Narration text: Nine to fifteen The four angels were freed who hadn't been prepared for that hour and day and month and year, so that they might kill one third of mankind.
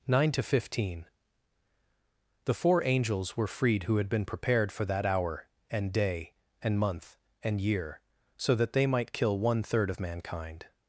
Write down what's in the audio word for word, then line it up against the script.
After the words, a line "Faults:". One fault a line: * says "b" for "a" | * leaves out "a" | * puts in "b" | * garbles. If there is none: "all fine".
Nine to fifteen The four angels were freed who had been prepared for that hour and day and month and year, so that they might kill one third of mankind.
Faults:
* says "had" for "hadn't"